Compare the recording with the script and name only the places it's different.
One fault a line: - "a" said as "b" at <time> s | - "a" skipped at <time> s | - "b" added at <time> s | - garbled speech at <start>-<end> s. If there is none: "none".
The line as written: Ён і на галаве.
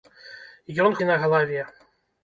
none